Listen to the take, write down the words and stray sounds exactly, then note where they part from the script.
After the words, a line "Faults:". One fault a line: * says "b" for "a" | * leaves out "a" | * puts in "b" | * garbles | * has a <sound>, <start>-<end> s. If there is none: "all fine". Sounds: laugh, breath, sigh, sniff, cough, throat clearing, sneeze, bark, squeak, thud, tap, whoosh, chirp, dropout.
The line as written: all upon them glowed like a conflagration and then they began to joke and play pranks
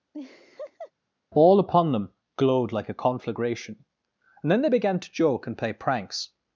all upon them glowed like a conflagration and then they began to joke and play pranks
Faults:
* has a laugh, 0.1-0.9 s